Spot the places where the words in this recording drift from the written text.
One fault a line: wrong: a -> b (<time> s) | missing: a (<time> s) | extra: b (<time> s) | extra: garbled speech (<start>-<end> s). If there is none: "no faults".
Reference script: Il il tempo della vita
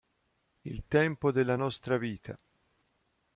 missing: il (0.9 s)
extra: nostra (1.5 s)